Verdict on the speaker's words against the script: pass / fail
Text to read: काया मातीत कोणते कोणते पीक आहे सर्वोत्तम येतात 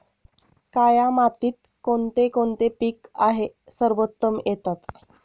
pass